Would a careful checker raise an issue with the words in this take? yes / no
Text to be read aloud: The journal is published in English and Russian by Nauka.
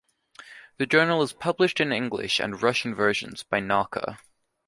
yes